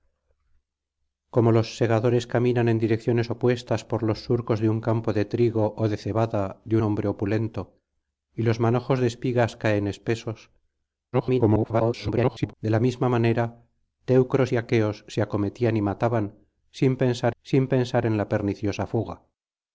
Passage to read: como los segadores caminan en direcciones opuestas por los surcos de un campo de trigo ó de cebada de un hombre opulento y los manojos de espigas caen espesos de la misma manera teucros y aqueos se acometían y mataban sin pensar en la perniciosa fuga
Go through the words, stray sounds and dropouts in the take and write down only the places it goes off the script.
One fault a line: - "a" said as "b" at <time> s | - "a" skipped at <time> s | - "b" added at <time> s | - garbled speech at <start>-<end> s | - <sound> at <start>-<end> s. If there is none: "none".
- "un" skipped at 6.8 s
- garbled speech at 11.1-12.5 s
- "sin pensar" added at 17.4 s